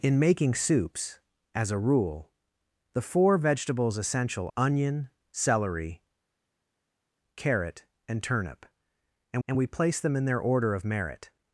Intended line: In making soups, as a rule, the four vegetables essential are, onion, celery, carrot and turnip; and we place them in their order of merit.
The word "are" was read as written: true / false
false